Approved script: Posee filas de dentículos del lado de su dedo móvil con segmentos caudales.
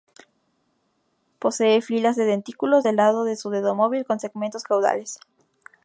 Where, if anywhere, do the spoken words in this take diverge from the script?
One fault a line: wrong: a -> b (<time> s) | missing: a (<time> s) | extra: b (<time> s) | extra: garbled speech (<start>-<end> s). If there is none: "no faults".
no faults